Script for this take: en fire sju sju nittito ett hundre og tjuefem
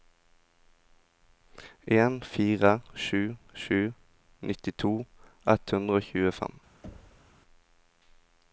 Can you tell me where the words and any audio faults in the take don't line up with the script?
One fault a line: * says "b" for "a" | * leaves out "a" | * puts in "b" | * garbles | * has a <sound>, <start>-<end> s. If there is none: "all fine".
* has a thud, 6.8-7.4 s